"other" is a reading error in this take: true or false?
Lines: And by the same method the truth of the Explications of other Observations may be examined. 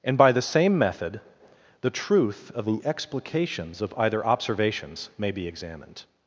true